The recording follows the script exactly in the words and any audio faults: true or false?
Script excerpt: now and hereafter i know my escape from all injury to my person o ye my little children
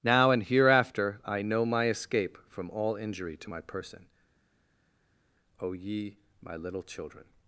true